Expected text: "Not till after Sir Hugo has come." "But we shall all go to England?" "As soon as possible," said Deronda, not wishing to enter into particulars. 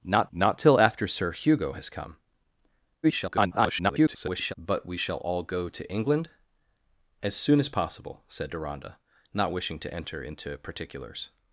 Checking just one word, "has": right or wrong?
right